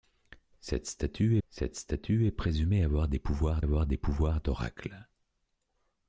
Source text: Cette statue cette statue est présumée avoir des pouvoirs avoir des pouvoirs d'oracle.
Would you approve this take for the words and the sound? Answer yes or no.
yes